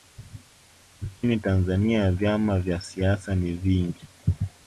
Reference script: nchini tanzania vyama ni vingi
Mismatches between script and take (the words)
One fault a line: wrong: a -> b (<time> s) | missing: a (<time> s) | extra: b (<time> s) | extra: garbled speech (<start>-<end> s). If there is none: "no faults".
extra: vya siasa (2.6 s)